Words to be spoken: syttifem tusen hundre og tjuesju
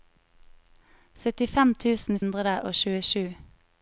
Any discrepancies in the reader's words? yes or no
no